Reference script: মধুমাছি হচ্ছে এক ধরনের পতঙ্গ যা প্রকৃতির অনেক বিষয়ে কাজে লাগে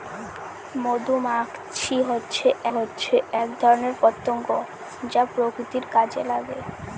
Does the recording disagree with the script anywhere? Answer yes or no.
yes